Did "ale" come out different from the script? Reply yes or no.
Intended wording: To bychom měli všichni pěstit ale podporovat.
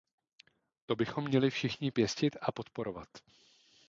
yes